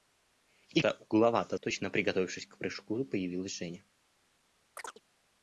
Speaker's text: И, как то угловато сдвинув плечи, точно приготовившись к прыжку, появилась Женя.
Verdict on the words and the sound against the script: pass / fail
fail